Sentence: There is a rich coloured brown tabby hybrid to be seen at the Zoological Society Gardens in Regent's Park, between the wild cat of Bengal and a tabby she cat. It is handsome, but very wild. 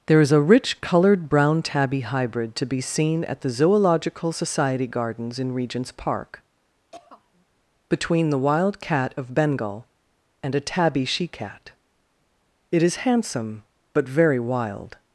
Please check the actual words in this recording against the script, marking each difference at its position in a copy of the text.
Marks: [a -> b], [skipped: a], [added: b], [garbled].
There is a rich coloured brown tabby hybrid to be seen at the Zoological Society Gardens in Regent's Park, between the wild cat of Bengal and a tabby she cat. It is handsome, but very wild.